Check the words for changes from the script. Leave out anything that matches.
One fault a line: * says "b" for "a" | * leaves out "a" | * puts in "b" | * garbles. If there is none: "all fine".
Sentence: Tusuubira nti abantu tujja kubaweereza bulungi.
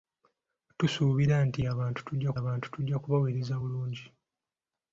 * puts in "abantu tujja"